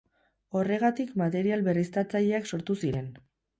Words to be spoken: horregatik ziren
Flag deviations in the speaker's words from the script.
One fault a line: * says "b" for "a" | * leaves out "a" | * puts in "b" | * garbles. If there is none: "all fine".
* puts in "material berriztatzaileak sortu"